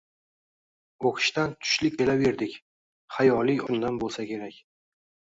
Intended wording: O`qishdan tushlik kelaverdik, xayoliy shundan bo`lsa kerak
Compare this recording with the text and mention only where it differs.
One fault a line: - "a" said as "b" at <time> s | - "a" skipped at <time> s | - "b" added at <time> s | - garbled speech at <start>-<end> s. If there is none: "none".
none